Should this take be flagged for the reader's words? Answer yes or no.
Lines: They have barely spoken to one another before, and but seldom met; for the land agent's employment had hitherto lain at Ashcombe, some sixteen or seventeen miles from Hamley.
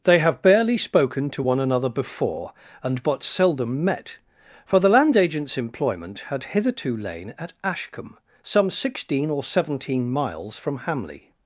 no